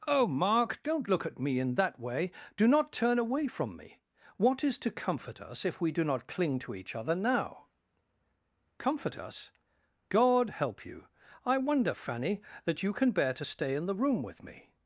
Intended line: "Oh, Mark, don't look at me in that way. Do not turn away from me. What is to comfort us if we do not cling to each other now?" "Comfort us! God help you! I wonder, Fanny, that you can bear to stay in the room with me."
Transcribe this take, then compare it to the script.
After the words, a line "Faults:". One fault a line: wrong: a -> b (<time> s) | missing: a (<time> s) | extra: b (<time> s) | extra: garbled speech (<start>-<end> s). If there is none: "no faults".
"Oh, Mark, don't look at me in that way. Do not turn away from me. What is to comfort us if we do not cling to each other now?" "Comfort us! God help you! I wonder, Fanny, that you can bear to stay in the room with me."
Faults:
no faults